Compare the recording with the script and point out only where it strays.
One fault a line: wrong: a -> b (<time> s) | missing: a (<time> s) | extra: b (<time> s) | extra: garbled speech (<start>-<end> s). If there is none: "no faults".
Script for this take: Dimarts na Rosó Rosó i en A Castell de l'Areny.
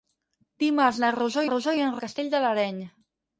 no faults